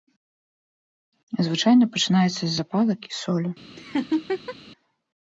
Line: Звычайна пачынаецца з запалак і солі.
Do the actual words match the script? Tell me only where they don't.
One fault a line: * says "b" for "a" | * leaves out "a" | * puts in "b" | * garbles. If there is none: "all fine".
all fine